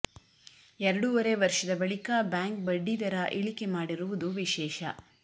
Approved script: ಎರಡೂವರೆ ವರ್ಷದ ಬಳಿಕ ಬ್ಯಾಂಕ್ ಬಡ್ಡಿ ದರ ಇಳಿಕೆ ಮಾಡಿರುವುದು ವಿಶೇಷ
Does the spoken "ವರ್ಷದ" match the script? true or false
true